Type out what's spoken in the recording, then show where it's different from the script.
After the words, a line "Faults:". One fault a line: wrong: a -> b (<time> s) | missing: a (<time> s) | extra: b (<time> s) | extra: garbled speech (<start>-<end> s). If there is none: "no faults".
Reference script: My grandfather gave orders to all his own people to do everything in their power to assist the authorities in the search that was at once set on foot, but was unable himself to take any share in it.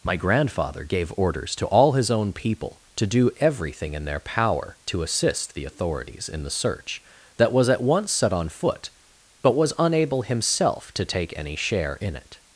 My grandfather gave orders to all his own people to do everything in their power to assist the authorities in the search that was at once set on foot, but was unable himself to take any share in it.
Faults:
no faults